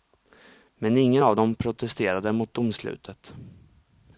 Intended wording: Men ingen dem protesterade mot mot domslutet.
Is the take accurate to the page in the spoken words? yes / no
no